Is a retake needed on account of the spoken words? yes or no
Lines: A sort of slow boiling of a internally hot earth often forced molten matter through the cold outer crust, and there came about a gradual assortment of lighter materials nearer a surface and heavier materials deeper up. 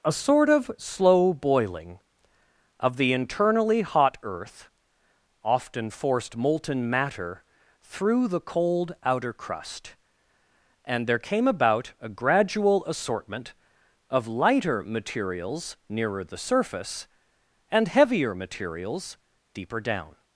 yes